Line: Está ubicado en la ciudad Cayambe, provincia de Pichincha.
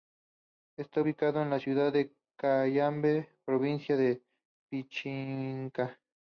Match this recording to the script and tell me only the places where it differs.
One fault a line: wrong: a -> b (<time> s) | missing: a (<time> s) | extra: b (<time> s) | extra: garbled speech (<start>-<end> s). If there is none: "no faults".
extra: de (1.9 s)